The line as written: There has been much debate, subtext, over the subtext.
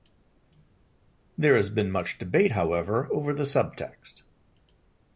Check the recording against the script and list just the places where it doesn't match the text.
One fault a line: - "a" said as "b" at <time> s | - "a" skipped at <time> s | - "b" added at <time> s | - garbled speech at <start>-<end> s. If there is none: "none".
- "subtext" said as "however" at 2.5 s